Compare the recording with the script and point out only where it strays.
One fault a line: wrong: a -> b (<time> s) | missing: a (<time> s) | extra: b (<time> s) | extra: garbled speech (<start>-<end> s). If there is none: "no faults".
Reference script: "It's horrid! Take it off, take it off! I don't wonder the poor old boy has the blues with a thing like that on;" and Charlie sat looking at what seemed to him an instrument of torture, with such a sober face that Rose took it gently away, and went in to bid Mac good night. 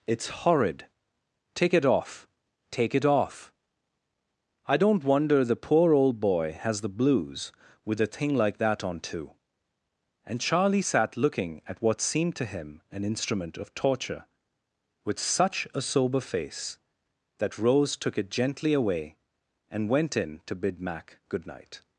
extra: too (9.0 s)